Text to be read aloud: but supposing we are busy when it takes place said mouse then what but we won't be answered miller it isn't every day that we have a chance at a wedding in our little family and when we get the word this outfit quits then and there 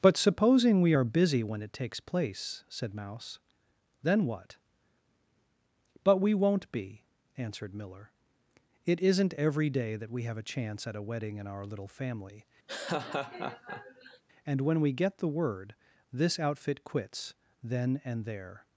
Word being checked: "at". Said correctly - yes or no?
yes